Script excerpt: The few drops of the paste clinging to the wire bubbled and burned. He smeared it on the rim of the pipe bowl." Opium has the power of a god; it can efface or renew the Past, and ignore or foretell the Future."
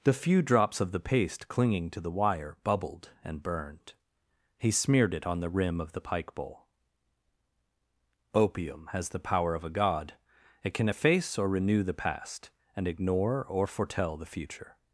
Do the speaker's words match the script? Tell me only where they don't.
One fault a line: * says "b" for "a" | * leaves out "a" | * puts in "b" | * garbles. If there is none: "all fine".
* says "pike" for "pipe"